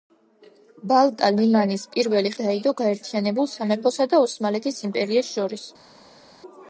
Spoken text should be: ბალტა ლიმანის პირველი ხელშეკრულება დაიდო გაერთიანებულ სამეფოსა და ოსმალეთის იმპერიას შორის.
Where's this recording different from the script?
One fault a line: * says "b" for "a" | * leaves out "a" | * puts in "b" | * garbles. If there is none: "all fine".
* leaves out "ხელშეკრულება"